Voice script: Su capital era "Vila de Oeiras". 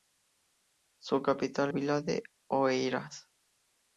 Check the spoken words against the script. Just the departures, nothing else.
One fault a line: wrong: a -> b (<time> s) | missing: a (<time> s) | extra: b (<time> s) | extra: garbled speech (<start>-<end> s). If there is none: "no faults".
missing: era (1.7 s)